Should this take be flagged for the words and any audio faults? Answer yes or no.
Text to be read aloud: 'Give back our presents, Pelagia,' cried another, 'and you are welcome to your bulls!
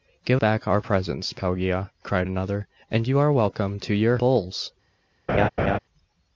yes